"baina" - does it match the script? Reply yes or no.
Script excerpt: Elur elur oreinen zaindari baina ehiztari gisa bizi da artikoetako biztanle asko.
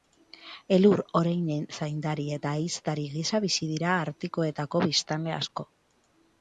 no